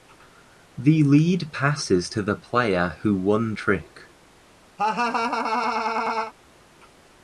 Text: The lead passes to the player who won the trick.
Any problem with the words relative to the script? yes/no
yes